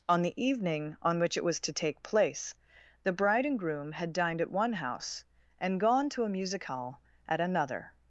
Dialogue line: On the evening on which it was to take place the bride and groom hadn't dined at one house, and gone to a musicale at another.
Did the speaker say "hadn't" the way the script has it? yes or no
no